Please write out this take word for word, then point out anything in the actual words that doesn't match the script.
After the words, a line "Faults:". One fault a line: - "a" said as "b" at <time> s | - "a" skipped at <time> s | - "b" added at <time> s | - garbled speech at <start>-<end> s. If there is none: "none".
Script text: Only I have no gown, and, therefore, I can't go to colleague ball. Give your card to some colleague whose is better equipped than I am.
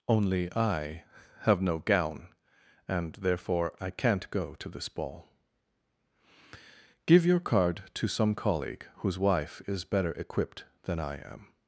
Only I have no gown, and, therefore, I can't go to this ball. Give your card to some colleague whose wife is better equipped than I am.
Faults:
- "colleague" said as "this" at 4.7 s
- "wife" added at 9.2 s